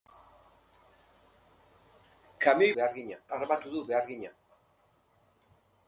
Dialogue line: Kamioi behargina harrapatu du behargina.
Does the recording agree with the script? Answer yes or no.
yes